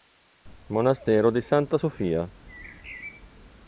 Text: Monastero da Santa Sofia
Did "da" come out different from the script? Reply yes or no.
yes